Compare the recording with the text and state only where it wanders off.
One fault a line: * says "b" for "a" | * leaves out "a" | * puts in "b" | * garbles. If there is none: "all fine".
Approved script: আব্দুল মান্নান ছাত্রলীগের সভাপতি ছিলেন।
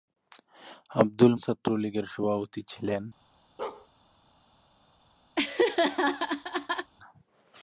* leaves out "মান্নান"